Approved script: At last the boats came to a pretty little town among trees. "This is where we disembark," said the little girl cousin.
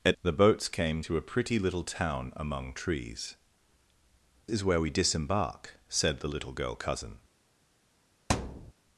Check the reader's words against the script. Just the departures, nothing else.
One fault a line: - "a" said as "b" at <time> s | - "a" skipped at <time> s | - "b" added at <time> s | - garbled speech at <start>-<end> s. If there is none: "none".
- "last" skipped at 0.2 s
- "This" skipped at 3.3 s